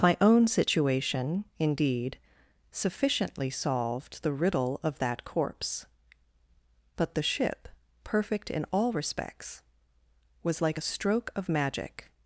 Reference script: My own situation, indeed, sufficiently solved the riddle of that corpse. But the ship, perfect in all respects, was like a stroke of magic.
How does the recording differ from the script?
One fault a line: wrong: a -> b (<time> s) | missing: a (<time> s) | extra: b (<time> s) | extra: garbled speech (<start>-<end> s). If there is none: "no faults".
no faults